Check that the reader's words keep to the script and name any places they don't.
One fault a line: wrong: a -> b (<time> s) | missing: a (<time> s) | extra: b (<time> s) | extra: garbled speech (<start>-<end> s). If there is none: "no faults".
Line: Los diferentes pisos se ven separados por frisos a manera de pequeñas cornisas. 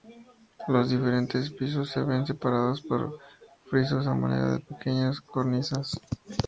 no faults